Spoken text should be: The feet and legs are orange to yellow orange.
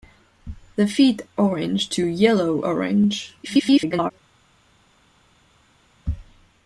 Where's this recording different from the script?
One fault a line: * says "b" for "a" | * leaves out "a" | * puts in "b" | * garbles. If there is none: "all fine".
* leaves out "and legs are"
* garbles